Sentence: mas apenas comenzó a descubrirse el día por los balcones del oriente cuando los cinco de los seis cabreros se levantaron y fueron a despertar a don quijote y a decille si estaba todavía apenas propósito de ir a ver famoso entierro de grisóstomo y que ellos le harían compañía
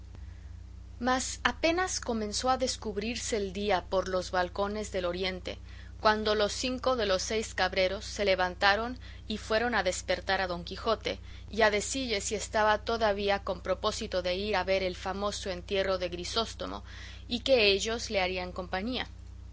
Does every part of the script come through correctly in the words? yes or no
no